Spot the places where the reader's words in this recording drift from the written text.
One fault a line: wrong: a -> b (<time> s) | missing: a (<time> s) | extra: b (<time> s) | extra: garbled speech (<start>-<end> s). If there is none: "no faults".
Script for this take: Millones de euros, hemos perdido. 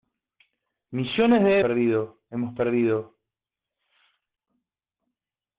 wrong: euros -> perdido (1.6 s)